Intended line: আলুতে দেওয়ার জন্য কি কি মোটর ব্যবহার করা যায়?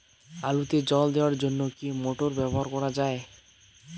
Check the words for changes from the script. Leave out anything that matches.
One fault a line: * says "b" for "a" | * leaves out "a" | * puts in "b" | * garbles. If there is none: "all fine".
* puts in "জল"
* leaves out "কি"